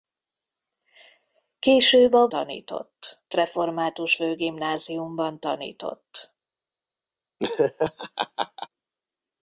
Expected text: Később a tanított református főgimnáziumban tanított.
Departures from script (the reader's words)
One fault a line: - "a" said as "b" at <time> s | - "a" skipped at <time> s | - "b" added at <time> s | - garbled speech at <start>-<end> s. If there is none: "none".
none